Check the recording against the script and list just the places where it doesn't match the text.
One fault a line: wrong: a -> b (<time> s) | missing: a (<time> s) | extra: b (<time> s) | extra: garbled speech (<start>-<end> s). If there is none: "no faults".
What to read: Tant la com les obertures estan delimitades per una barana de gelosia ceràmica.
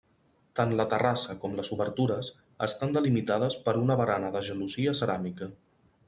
extra: terrassa (0.9 s)